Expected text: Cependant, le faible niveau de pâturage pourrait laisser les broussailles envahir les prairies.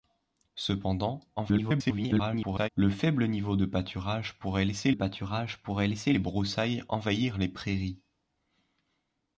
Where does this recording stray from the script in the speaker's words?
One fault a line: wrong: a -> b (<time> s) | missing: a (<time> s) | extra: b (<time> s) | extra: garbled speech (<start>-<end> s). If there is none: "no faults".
extra: garbled speech (1.4-2.7 s)
extra: pâturage pourrait laisser (4.9 s)